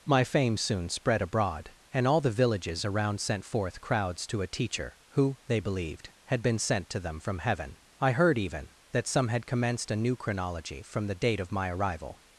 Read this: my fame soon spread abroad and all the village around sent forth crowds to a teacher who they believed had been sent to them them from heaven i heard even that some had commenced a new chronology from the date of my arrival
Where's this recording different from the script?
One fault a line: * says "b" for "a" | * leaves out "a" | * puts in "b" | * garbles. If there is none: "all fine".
* says "villages" for "village"
* leaves out "them"